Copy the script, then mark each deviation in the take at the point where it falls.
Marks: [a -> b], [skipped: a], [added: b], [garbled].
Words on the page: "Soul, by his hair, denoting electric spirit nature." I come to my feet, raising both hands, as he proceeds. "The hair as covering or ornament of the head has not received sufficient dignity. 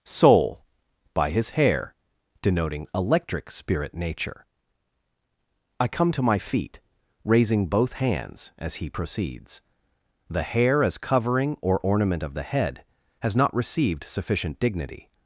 "Soul, by his hair, denoting electric spirit nature." I come to my feet, raising both hands, as he proceeds. "The hair as covering or ornament of the head has not received sufficient dignity.